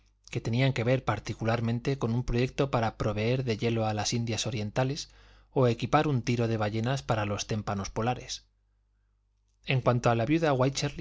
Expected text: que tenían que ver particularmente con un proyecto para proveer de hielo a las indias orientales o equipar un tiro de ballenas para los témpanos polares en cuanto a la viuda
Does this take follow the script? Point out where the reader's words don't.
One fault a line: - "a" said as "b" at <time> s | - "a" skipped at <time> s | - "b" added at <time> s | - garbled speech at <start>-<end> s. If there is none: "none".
none